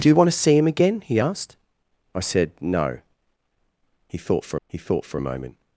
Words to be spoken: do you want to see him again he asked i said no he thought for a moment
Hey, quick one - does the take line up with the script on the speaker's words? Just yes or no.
no